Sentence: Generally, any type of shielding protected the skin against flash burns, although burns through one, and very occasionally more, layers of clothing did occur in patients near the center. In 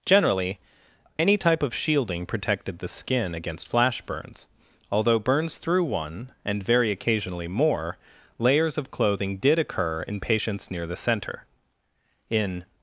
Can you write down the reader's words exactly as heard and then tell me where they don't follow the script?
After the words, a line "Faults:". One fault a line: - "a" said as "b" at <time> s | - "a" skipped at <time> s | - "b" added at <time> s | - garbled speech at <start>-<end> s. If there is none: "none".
Generally, any type of shielding protected the skin against flash burns, although burns through one, and very occasionally more, layers of clothing did occur in patients near the center. In
Faults:
none